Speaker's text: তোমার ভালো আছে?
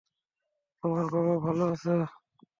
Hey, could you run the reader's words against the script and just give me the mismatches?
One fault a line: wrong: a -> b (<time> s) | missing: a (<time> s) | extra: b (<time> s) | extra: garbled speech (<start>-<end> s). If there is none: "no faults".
extra: বাবা (1.1 s)